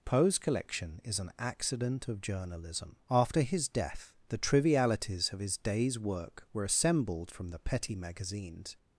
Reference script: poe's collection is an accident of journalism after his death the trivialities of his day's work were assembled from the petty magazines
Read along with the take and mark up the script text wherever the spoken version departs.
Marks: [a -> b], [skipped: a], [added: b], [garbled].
poe's collection is an accident of journalism after his death the trivialities of his day's work were assembled from the petty magazines